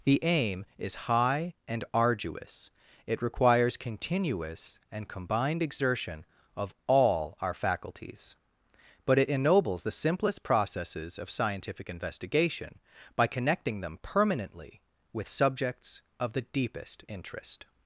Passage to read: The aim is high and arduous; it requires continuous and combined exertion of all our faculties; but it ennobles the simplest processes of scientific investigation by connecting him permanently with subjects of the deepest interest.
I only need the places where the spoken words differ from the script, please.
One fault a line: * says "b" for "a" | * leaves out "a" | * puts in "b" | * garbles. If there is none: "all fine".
* says "them" for "him"